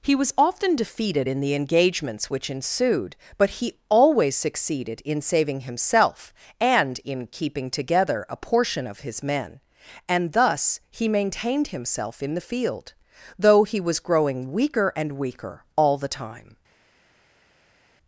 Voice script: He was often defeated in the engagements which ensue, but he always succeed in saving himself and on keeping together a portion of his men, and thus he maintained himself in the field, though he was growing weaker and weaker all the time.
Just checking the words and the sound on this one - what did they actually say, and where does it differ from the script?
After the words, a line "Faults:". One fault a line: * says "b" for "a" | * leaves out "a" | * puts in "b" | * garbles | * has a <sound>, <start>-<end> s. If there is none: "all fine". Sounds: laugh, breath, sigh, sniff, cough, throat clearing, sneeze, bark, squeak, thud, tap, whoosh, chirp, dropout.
He was often defeated in the engagements which ensued, but he always succeeded in saving himself and in keeping together a portion of his men, and thus he maintained himself in the field, though he was growing weaker and weaker all the time.
Faults:
* says "ensued" for "ensue"
* says "succeeded" for "succeed"
* says "in" for "on"